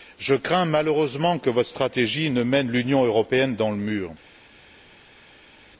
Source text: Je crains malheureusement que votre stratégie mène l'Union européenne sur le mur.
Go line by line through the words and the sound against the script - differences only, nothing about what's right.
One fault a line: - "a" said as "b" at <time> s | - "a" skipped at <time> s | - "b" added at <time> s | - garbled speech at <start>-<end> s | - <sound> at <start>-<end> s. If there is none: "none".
- "ne" added at 2.3 s
- "sur" said as "dans" at 3.5 s